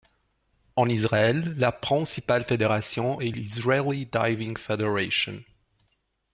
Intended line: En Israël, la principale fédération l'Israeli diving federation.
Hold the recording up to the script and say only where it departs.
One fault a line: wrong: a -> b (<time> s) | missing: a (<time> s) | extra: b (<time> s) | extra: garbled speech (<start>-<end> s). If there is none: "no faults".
extra: est (3.2 s)